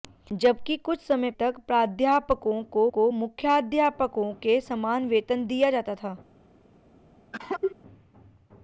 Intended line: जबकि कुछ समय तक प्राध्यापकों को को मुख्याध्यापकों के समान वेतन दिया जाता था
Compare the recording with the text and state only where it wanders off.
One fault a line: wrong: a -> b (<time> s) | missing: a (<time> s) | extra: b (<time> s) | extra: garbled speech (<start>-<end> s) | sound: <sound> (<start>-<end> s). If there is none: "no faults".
sound: cough (7.3-7.8 s)